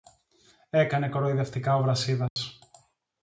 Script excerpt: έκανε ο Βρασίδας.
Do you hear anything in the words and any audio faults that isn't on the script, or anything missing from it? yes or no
yes